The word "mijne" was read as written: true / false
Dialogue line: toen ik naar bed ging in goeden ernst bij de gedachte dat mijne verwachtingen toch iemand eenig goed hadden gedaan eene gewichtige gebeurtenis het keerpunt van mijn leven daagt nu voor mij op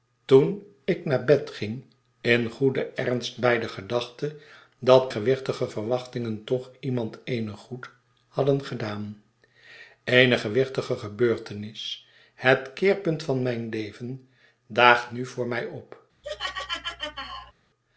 false